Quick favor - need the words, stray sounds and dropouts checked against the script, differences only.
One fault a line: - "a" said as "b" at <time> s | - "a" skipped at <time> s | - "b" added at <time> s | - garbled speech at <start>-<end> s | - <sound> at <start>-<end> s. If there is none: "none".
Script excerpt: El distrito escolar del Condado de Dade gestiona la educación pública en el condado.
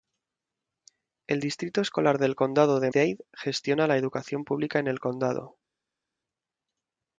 none